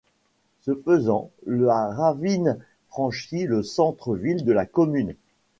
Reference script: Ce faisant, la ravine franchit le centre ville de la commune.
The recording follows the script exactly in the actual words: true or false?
true